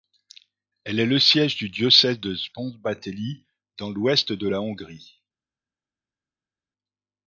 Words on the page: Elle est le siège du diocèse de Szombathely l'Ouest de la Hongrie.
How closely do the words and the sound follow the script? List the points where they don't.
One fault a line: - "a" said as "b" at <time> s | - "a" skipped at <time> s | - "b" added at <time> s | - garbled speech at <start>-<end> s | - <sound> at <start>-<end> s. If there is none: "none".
- "dans" added at 3.8 s